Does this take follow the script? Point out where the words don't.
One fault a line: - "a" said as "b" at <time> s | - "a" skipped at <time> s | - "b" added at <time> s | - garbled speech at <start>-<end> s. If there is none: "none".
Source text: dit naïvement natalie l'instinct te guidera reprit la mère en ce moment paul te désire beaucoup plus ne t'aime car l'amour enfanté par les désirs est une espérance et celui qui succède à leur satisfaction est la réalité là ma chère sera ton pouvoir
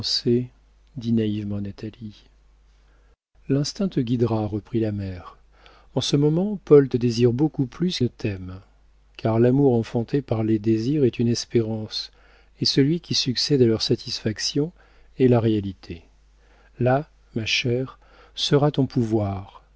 none